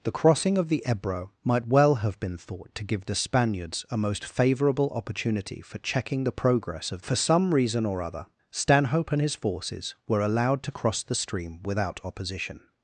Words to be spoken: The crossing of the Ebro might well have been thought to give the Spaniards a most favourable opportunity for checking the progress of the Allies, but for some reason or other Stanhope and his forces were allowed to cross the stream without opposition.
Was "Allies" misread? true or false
true